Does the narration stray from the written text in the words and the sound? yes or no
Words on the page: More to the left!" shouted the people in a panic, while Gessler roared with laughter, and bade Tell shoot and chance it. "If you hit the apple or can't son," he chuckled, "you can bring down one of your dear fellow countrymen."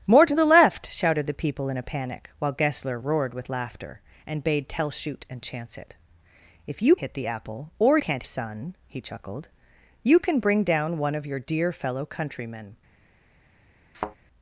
yes